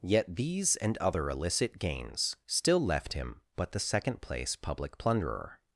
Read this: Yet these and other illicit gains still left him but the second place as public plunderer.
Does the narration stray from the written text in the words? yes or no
yes